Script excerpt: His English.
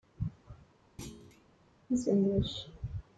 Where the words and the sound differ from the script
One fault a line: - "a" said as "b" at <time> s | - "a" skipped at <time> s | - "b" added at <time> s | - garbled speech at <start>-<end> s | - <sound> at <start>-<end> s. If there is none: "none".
- thud at 1.0-1.5 s